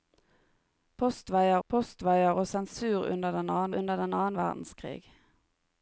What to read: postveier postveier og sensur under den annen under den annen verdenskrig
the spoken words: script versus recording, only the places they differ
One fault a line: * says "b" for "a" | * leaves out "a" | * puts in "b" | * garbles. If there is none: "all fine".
all fine